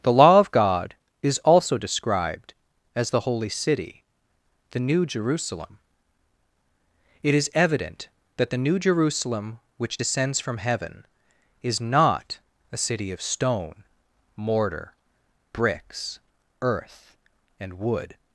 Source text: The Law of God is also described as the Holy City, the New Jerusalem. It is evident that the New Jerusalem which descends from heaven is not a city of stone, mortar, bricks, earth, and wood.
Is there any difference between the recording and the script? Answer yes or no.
no